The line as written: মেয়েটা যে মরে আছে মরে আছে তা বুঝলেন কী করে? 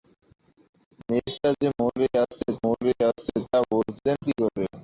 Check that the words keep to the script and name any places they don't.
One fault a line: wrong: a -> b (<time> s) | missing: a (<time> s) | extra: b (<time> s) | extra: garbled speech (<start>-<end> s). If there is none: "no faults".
no faults